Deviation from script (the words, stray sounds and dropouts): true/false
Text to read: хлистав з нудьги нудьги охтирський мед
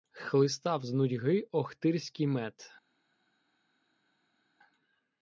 true